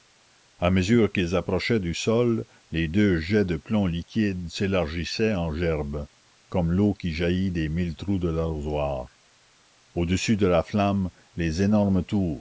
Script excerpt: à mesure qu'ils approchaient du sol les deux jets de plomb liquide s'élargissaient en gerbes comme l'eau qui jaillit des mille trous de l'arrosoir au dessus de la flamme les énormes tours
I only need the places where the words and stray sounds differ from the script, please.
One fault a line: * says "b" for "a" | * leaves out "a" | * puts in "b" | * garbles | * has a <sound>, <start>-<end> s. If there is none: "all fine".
all fine